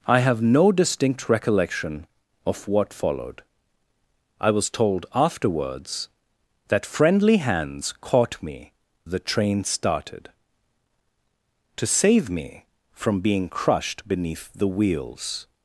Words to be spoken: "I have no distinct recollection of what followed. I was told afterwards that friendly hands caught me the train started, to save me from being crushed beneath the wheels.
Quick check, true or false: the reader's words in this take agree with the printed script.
true